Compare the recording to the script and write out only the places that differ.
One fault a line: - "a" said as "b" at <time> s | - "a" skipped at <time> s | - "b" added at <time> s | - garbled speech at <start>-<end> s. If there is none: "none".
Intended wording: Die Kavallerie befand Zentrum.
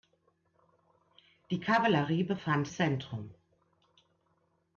none